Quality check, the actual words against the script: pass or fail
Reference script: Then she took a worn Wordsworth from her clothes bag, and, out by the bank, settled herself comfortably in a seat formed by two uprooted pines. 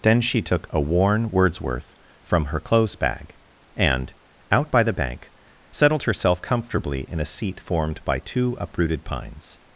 pass